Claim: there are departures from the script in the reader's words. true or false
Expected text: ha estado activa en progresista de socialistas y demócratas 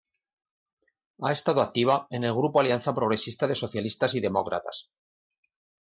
true